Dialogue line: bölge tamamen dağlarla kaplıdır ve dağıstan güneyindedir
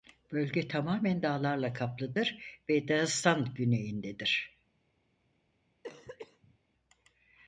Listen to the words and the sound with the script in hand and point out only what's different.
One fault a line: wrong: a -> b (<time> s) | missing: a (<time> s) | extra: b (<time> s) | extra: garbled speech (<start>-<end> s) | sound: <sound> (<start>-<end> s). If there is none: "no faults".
sound: cough (5.8-6.6 s)